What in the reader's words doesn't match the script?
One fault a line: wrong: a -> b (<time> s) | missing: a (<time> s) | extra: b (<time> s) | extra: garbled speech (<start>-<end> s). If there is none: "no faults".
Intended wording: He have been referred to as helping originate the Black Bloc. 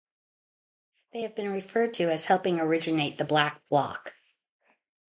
wrong: He -> They (1.1 s)